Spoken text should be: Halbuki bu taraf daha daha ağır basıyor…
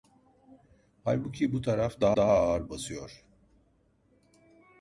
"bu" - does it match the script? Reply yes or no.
yes